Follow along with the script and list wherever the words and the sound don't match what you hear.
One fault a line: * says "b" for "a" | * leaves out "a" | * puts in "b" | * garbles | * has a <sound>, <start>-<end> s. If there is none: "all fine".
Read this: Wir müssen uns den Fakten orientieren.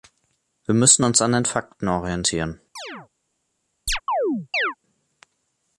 * puts in "an"
* has a chirp, 2.8-3.1 s
* has a chirp, 3.9-4.7 s